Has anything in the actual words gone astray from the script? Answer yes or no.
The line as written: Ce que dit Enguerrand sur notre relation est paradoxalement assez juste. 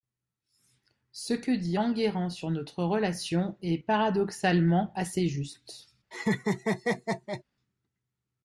no